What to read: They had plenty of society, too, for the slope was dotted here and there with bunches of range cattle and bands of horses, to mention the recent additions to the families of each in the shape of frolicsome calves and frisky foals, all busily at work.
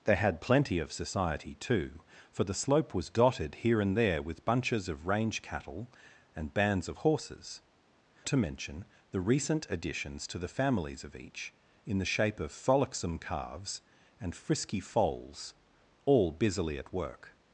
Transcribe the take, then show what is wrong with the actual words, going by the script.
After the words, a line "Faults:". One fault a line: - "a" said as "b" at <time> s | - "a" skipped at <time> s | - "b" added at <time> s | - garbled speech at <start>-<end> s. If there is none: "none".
They had plenty of society, too, for the slope was dotted here and there with bunches of range cattle and bands of horses, to mention the recent additions to the families of each in the shape of frolicsome calves and frisky foals, all busily at work.
Faults:
none